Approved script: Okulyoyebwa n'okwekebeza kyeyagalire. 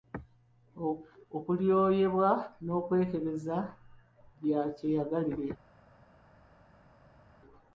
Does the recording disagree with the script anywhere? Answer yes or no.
yes